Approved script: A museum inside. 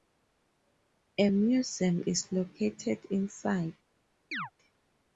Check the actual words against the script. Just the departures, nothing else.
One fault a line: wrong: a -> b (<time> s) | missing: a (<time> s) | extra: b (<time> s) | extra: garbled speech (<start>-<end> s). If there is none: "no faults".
extra: is located (2.1 s)